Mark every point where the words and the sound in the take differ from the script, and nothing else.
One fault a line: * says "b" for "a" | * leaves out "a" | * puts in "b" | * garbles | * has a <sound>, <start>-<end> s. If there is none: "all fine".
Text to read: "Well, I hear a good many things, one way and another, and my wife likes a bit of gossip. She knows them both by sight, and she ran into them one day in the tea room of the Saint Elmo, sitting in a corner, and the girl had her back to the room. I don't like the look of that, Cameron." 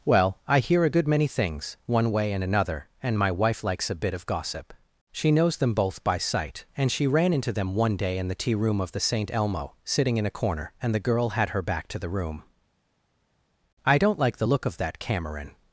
all fine